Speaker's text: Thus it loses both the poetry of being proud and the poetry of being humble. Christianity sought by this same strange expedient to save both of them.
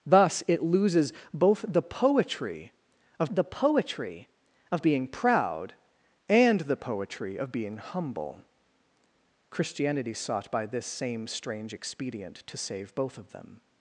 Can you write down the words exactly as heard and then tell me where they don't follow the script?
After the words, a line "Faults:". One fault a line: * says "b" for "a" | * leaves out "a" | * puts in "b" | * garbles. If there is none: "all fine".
Thus it loses both the poetry of the poetry of being proud and the poetry of being humble. Christianity sought by this same strange expedient to save both of them.
Faults:
* puts in "the poetry of"